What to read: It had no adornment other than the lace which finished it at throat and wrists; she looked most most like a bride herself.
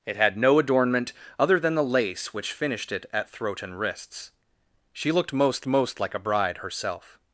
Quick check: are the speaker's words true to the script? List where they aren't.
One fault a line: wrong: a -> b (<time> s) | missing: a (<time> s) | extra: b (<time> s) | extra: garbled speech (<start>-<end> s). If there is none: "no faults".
no faults